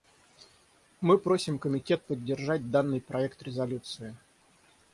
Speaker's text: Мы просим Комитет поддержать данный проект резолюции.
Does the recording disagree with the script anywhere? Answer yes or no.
no